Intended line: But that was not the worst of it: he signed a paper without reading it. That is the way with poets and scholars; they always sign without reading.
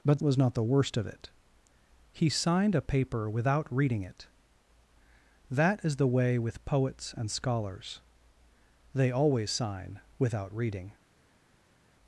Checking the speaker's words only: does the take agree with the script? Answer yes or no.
no